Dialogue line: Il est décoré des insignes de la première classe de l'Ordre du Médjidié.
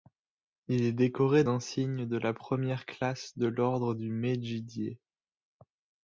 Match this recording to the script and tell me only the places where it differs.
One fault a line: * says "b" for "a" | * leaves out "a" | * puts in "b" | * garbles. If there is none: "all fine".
* leaves out "des"